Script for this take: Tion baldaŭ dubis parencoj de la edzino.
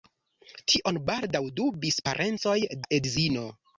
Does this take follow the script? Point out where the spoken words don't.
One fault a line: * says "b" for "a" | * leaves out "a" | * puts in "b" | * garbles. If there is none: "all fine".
* leaves out "de"